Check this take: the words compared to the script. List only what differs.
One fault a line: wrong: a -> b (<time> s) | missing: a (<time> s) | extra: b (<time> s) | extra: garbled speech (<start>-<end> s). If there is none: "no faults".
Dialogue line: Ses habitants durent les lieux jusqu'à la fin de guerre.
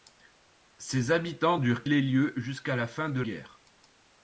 no faults